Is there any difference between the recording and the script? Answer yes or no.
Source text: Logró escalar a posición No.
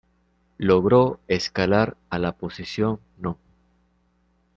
yes